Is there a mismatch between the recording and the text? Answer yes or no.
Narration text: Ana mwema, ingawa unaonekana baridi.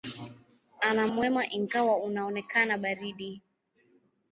no